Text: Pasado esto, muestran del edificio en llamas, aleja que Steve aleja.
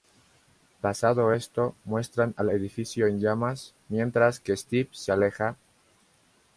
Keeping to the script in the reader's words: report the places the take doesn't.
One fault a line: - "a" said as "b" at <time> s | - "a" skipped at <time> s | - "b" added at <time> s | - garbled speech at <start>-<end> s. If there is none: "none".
- "del" said as "al" at 2.4 s
- "aleja" said as "mientras" at 3.9 s
- "se" added at 4.9 s